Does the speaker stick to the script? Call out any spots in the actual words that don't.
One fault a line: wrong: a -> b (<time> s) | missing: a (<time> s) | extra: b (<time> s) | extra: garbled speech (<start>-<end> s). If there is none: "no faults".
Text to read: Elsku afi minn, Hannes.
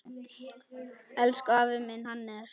no faults